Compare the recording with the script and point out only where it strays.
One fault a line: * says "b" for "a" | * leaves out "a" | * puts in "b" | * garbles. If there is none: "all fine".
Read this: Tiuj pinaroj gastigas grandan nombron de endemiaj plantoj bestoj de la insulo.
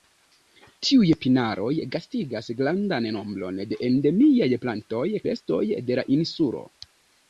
all fine